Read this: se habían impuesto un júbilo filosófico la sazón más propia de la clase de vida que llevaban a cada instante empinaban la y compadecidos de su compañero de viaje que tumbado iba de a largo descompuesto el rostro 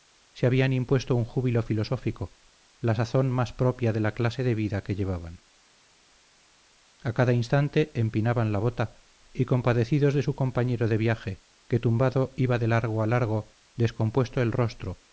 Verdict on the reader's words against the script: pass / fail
fail